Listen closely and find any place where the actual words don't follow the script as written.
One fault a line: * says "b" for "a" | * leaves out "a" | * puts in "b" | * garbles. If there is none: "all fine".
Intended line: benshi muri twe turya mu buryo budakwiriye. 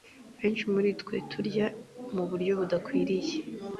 all fine